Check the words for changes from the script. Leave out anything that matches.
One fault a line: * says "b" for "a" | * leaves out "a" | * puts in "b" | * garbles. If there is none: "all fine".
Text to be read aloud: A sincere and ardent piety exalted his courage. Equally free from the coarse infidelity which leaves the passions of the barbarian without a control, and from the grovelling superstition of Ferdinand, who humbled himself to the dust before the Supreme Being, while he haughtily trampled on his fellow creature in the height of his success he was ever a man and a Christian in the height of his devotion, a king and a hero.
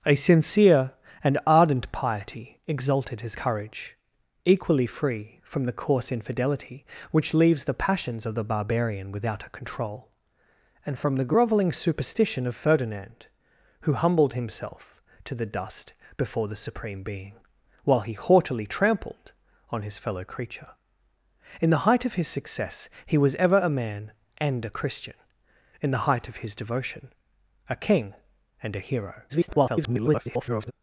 * garbles